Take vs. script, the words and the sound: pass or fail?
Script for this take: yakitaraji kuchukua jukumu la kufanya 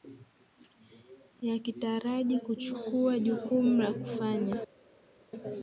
pass